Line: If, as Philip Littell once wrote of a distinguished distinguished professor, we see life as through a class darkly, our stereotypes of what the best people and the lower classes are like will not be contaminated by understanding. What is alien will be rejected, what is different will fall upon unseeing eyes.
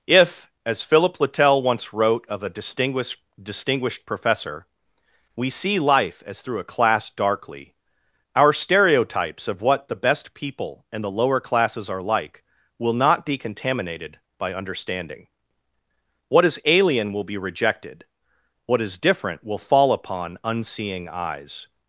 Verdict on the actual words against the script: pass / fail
pass